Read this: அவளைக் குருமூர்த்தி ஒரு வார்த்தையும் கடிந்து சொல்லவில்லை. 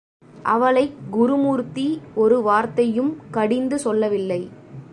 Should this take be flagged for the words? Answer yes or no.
no